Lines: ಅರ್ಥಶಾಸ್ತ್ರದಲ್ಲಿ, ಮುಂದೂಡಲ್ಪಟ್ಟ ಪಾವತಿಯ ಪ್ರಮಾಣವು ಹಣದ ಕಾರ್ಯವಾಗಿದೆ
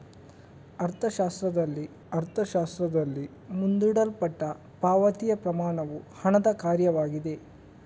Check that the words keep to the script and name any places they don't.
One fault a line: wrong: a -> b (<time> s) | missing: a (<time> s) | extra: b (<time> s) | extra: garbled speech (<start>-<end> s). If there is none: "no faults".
extra: ಅರ್ಥಶಾಸ್ತ್ರದಲ್ಲಿ (2.1 s)